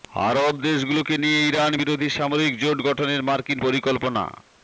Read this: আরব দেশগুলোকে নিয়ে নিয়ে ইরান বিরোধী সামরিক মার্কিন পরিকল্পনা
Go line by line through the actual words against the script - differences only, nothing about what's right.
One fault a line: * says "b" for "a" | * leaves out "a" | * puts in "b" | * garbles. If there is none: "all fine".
* leaves out "নিয়ে"
* puts in "জোট গঠনের"